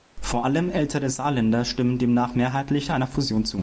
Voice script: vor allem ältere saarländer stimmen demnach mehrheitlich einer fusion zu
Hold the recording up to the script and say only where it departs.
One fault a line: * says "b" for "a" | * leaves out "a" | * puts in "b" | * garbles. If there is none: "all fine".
all fine